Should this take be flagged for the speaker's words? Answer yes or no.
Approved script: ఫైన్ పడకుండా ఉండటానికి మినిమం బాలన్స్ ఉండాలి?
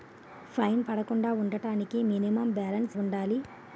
no